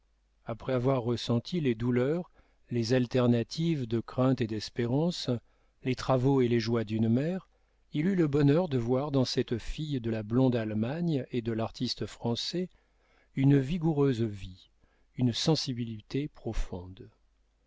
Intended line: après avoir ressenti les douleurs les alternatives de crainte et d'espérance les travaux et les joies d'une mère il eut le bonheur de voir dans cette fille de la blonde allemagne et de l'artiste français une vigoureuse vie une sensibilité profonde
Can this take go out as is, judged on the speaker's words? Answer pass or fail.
pass